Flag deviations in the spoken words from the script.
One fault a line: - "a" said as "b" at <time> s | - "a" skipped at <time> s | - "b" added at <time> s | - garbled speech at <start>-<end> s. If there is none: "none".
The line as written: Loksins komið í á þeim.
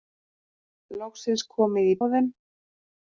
none